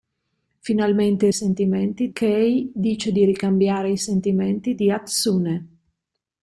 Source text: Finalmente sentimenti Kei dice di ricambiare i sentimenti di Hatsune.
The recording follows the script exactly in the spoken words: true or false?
true